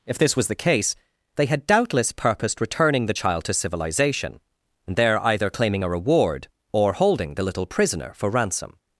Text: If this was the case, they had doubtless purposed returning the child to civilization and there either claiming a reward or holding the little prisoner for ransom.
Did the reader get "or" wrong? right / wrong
right